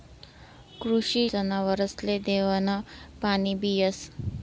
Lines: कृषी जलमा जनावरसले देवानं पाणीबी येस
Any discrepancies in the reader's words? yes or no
yes